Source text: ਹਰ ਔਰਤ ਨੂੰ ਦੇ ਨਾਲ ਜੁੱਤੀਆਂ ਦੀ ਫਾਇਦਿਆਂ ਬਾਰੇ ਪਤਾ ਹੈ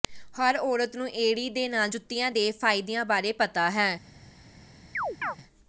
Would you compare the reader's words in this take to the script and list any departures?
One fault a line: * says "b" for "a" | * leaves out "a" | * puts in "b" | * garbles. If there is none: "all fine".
* puts in "ਏੜੀ"
* says "ਦੇ" for "ਦੀ"